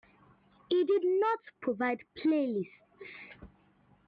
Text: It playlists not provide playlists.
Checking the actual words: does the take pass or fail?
fail